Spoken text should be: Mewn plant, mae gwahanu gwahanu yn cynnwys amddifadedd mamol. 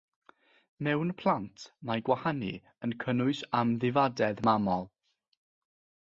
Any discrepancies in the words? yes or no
yes